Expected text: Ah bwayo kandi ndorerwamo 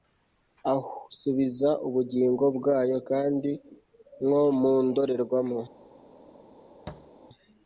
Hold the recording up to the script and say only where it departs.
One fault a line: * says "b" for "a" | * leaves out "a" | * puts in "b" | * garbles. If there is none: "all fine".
* puts in "subiza ubugingo"
* puts in "nko mu"